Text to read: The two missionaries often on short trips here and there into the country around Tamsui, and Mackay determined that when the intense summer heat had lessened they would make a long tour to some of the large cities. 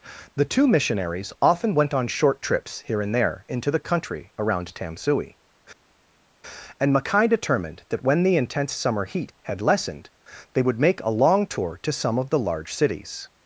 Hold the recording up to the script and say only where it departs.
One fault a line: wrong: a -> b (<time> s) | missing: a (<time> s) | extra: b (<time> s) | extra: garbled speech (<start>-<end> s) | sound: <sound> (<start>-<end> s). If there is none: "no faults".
extra: went (1.8 s)